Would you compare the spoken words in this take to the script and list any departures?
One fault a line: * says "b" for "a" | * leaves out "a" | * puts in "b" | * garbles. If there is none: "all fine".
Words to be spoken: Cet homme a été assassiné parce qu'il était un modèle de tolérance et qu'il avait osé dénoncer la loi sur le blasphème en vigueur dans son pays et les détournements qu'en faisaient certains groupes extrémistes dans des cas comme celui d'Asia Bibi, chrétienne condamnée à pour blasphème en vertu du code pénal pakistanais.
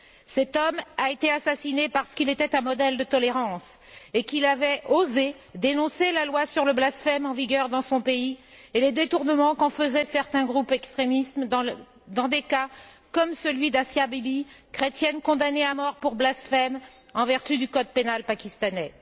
* puts in "mort"